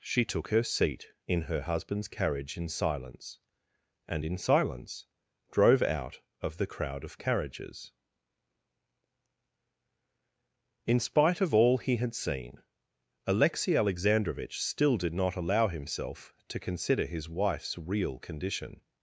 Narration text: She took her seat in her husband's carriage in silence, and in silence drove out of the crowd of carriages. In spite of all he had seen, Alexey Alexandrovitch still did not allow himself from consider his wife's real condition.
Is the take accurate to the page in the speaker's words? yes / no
no